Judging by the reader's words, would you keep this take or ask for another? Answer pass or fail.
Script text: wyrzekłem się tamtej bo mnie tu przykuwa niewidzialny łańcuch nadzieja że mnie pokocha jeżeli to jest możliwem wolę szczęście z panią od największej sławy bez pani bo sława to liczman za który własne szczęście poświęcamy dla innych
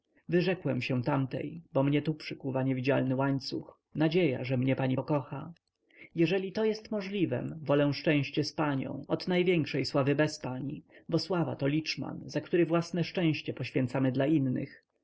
fail